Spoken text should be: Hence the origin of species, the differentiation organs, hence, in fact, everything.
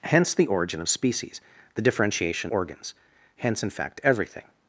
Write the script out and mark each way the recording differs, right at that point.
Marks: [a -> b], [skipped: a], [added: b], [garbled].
Hence the origin of species, the differentiation organs, hence, in fact, everything.